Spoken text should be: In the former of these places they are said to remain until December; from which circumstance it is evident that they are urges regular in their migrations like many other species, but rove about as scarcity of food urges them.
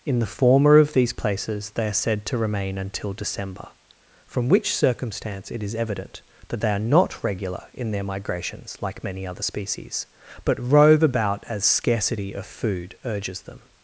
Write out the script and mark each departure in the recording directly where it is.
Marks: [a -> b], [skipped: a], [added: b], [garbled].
In the former of these places they are said to remain until December; from which circumstance it is evident that they are [urges -> not] regular in their migrations like many other species, but rove about as scarcity of food urges them.